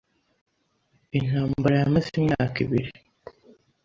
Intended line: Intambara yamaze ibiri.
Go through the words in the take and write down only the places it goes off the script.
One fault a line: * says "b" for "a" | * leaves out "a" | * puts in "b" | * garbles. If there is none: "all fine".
* puts in "imyaka"